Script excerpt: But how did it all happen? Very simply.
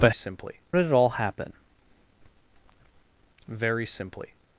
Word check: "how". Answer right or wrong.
wrong